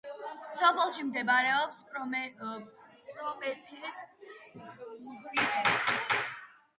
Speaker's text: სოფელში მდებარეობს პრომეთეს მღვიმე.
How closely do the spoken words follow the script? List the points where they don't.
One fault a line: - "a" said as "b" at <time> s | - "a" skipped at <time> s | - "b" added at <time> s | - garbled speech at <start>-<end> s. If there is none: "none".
none